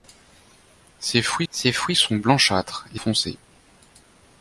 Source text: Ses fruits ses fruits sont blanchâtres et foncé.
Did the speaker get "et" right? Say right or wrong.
right